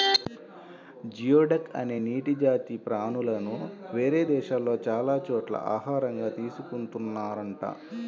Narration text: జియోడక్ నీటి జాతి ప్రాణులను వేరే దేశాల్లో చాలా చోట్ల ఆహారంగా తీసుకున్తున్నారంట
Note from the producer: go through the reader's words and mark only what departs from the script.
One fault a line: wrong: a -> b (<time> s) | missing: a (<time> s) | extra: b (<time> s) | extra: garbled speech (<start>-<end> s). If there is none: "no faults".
extra: అనే (1.8 s)